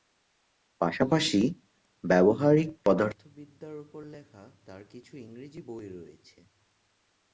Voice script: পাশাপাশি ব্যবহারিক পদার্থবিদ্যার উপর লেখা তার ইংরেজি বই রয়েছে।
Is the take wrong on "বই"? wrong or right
right